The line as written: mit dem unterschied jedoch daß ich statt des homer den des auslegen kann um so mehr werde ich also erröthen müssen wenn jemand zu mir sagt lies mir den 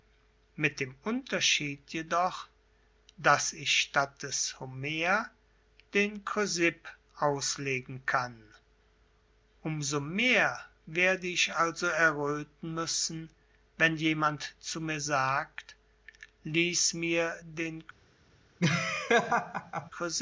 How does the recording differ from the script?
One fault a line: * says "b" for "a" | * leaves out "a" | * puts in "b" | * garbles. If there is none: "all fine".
* says "chrysipp" for "des"